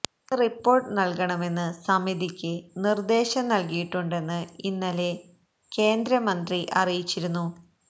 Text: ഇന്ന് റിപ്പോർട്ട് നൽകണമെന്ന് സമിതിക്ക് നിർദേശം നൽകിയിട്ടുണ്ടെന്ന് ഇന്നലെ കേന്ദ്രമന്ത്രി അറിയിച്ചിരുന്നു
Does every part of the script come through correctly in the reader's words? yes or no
yes